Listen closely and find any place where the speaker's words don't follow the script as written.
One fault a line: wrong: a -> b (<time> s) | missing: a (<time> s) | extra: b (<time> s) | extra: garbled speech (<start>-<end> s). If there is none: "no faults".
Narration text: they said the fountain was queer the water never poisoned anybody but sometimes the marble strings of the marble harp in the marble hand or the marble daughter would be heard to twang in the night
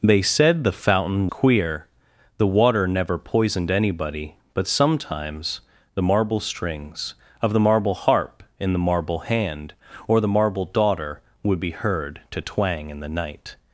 missing: was (1.3 s)